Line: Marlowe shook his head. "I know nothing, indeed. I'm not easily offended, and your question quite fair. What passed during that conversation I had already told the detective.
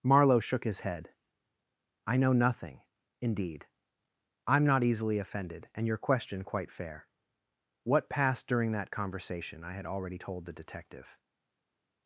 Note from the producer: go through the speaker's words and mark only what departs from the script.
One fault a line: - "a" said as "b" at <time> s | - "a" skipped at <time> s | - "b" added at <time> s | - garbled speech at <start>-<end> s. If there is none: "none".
none